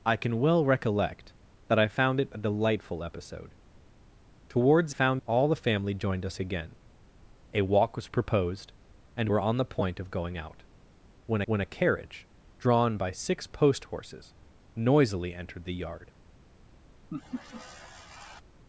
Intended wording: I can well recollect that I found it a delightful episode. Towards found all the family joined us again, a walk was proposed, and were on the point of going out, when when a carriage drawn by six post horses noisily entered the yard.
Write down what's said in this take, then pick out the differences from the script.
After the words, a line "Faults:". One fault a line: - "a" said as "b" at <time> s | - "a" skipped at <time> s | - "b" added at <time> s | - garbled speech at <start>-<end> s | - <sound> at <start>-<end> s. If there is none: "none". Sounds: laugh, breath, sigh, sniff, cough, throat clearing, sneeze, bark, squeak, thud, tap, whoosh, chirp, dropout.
I can well recollect that I found it a delightful episode. Towards found all the family joined us again, a walk was proposed, and were on the point of going out, when when a carriage drawn by six post horses noisily entered the yard.
Faults:
- laugh at 17.1-18.4 s